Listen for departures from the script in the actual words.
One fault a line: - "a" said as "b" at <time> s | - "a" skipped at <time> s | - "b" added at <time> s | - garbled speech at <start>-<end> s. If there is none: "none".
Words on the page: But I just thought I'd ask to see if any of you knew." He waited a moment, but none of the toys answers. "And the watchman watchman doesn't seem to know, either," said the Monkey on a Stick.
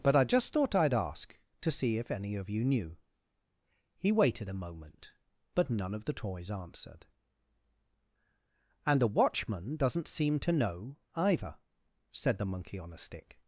- "answers" said as "answered" at 6.5 s
- "watchman" skipped at 9.8 s